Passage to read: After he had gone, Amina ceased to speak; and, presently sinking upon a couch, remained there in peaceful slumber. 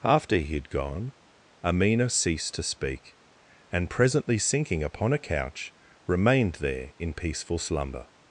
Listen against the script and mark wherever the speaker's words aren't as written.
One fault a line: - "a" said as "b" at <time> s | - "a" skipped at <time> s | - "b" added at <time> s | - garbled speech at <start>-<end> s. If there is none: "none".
none